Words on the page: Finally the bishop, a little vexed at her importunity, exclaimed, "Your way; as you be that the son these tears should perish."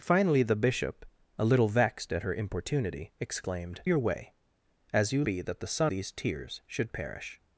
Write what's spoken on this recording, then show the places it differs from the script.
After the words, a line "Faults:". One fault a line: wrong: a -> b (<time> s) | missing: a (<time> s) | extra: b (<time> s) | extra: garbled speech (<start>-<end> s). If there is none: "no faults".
Finally the bishop, a little vexed at her importunity, exclaimed, "Your way; as you be that the son these tears should perish."
Faults:
no faults